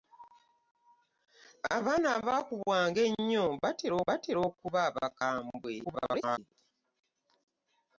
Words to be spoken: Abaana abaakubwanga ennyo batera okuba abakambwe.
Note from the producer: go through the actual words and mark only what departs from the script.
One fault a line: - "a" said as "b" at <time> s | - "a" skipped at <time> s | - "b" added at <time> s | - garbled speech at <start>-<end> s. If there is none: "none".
- "batera" added at 4.1 s
- garbled speech at 5.8-6.4 s